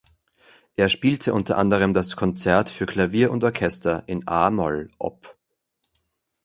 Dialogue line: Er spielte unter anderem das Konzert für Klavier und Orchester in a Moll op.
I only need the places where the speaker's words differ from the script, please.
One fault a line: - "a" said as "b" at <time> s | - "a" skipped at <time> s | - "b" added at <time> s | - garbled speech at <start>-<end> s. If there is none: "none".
none